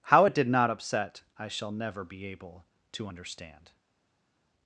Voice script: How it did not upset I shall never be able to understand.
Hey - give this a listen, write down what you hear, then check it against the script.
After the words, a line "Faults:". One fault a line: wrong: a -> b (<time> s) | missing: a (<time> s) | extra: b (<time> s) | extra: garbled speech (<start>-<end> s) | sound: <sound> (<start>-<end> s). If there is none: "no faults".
How it did not upset I shall never be able to understand.
Faults:
no faults